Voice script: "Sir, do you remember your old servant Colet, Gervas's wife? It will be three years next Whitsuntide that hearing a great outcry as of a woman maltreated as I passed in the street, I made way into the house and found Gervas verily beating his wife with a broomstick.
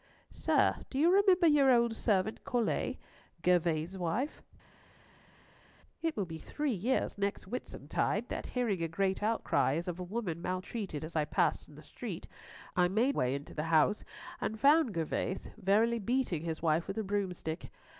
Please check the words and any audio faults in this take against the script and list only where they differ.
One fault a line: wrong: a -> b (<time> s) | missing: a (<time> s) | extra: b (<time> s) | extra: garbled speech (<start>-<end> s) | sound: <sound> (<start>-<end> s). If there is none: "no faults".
no faults